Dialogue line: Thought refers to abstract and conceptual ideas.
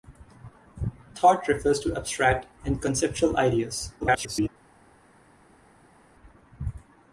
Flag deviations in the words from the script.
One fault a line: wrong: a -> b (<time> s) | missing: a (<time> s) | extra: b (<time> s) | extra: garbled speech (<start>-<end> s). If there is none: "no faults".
extra: garbled speech (4.0-4.5 s)